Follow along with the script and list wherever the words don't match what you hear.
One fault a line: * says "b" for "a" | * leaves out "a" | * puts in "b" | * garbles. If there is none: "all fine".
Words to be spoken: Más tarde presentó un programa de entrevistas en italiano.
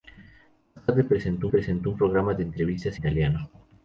* puts in "presentó"
* leaves out "en"